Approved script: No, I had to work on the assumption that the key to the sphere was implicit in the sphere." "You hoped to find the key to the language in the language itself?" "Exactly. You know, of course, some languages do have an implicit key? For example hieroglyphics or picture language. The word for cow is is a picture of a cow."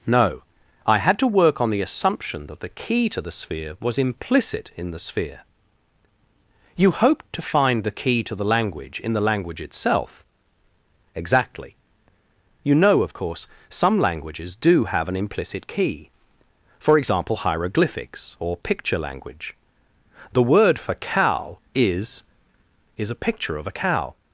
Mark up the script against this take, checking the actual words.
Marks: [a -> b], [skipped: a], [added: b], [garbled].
No, I had to work on the assumption that the key to the sphere was implicit in the sphere." "You hoped to find the key to the language in the language itself?" "Exactly. You know, of course, some languages do have an implicit key? For example hieroglyphics or picture language. The word for cow is is a picture of a cow."